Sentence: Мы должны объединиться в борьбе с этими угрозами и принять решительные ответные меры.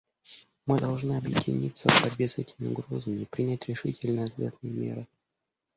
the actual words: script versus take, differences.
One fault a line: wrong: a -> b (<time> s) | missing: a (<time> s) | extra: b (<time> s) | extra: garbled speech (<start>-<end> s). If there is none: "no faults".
no faults